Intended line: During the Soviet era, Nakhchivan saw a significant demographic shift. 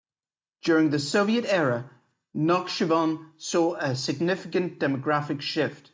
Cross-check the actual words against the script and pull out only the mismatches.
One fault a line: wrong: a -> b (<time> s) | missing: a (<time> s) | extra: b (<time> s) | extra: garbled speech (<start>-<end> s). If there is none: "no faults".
no faults